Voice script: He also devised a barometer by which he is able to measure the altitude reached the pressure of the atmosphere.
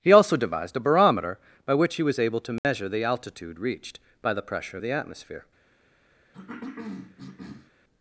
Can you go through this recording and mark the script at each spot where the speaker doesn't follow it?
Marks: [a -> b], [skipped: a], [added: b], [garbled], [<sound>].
He also devised a barometer by which he [is -> was] able to measure [dropout] the altitude reached [added: by] the pressure of the atmosphere. [cough]